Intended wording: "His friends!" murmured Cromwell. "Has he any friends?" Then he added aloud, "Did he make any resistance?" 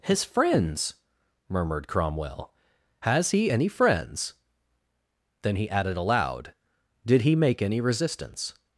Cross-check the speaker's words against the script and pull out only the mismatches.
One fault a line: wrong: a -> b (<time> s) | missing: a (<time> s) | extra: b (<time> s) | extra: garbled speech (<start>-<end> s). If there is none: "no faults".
no faults